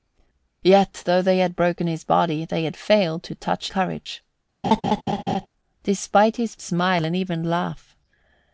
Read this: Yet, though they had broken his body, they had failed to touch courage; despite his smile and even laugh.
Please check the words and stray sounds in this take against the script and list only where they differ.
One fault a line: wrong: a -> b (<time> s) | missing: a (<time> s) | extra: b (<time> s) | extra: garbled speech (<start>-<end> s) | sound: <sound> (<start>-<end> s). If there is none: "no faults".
sound: laugh (4.6-5.5 s)